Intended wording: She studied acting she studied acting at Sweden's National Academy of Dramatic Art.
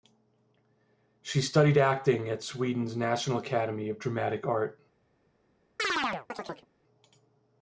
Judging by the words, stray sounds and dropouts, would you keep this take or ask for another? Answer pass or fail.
fail